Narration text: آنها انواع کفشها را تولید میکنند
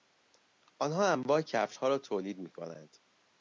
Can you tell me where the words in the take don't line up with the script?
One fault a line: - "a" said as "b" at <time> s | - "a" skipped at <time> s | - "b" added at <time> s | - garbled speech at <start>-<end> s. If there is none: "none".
none